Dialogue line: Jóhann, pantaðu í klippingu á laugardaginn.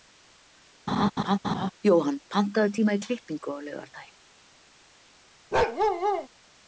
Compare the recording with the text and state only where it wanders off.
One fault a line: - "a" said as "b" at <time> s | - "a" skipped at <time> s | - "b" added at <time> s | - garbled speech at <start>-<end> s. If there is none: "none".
- "tíma" added at 2.8 s